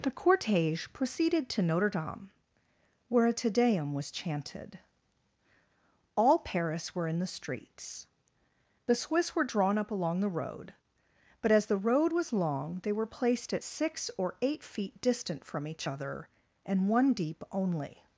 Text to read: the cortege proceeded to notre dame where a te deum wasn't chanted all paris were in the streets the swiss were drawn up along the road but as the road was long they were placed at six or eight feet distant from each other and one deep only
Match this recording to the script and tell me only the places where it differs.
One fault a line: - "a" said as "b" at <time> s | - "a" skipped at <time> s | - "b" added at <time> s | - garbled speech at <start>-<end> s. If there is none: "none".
- "wasn't" said as "was" at 3.9 s